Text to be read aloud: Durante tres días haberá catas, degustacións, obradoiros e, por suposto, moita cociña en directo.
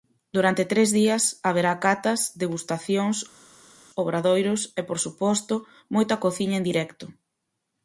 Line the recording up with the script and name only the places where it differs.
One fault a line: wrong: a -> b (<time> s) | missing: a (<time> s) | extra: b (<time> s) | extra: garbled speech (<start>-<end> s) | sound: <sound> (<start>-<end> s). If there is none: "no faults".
no faults